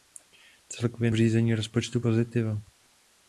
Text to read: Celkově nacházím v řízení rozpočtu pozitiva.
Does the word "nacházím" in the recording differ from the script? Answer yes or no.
yes